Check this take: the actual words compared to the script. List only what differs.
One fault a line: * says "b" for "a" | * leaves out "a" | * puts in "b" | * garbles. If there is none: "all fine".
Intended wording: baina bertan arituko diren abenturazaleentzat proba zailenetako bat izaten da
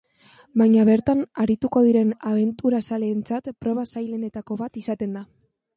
all fine